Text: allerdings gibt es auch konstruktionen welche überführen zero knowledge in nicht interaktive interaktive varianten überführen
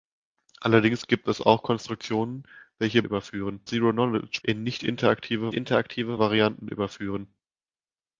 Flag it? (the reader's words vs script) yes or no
no